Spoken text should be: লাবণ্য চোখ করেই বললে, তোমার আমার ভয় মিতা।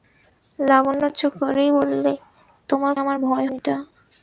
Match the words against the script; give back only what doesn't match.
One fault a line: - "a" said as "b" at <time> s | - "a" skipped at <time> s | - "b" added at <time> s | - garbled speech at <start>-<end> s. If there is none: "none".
none